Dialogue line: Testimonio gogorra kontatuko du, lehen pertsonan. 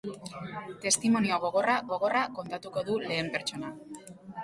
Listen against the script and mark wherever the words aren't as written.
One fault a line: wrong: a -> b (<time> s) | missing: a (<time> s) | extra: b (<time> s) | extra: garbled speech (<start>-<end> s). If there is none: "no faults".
extra: gogorra (1.9 s)